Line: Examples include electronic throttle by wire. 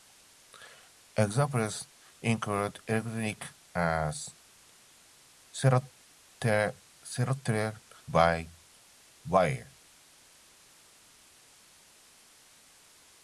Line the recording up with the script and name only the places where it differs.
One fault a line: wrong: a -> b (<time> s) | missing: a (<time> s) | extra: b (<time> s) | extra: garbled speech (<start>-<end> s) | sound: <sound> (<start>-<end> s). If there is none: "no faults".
no faults